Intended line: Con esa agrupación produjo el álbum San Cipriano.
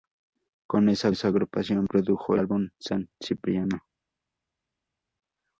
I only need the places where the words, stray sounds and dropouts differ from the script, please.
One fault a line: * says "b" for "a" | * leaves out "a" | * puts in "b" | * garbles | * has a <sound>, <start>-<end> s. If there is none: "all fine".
* puts in "esa"
* leaves out "el"